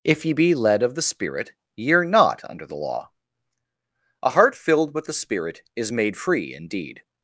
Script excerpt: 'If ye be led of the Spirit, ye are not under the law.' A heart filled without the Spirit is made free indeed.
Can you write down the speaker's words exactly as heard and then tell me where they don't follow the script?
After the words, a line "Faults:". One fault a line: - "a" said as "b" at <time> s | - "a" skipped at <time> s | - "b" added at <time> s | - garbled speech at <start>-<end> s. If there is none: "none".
'If ye be led of the Spirit, ye are not under the law.' A heart filled with the Spirit is made free indeed.
Faults:
- "without" said as "with" at 4.9 s